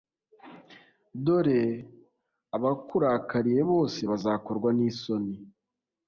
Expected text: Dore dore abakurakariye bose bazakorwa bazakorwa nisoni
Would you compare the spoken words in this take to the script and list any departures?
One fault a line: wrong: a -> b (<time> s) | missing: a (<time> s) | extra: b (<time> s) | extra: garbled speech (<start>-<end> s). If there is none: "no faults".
missing: dore (1.6 s)
missing: bazakorwa (4.7 s)